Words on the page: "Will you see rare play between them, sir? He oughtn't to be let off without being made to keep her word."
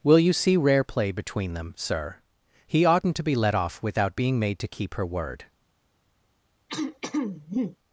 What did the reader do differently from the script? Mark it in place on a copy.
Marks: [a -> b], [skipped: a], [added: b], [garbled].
"Will you see rare play between them, sir? He oughtn't to be let off without being made to keep her word."